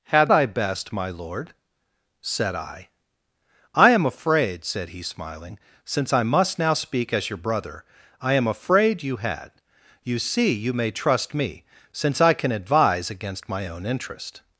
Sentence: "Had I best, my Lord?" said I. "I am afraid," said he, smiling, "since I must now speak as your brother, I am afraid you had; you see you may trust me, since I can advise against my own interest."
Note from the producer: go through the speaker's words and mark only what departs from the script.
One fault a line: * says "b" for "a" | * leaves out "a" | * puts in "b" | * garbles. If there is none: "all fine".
all fine